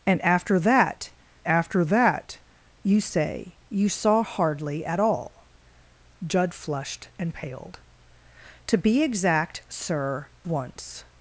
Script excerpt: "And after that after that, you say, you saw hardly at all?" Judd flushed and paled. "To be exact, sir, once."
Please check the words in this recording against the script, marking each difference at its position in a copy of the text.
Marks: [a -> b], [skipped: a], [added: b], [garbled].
"And after that after that, you say, you saw hardly at all?" Judd flushed and paled. "To be exact, sir, once."